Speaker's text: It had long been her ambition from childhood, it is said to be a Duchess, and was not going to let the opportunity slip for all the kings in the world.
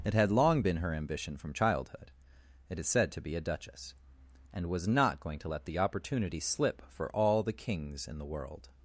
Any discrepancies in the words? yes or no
no